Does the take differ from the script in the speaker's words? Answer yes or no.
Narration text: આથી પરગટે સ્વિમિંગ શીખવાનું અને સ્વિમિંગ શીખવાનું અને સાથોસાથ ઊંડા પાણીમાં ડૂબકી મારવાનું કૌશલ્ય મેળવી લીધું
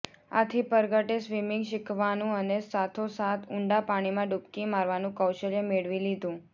yes